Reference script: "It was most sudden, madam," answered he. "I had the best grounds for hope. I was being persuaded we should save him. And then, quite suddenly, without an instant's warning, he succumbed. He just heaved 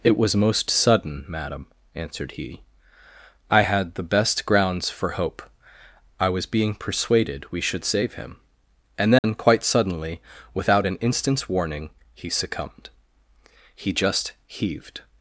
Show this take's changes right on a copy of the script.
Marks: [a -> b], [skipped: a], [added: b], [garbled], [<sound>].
"It was most sudden, madam," answered he. "I had the best grounds for hope. I was being persuaded we should save him. And then, [dropout] quite suddenly, without an instant's warning, he succumbed. He just heaved